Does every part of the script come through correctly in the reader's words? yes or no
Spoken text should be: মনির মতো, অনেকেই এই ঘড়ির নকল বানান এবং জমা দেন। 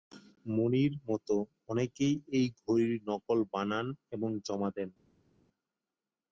yes